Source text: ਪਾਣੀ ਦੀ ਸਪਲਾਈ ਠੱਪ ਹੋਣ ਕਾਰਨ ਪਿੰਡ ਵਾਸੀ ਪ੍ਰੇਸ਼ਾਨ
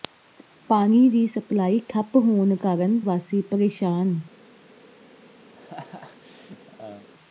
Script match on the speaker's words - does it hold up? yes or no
no